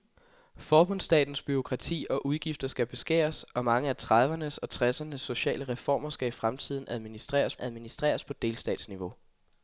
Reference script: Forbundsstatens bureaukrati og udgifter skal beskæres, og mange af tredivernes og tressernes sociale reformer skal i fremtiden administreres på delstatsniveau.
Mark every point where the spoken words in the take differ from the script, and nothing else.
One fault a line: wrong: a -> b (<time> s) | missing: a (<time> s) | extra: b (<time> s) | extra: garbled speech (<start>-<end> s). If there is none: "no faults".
extra: administreres (7.6 s)